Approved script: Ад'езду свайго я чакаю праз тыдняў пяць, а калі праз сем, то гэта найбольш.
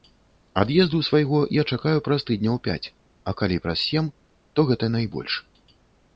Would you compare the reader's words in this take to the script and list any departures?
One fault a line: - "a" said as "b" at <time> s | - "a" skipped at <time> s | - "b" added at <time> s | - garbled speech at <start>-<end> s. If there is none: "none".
none